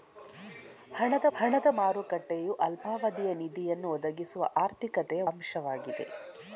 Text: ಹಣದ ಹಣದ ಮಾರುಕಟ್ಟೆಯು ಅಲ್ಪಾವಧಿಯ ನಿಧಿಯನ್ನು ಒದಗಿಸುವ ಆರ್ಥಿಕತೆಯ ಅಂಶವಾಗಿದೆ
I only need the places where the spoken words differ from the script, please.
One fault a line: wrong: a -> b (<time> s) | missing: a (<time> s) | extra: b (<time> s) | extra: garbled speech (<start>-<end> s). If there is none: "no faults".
no faults